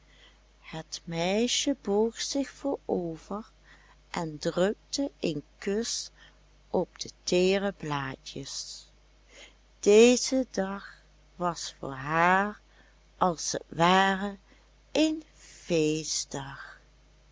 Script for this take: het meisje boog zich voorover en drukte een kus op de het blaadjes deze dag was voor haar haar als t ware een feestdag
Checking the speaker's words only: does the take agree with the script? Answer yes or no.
no